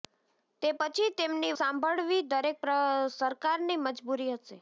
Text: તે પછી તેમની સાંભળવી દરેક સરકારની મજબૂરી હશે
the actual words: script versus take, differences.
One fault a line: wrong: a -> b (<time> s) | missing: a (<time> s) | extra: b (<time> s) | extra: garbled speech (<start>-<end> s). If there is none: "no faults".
no faults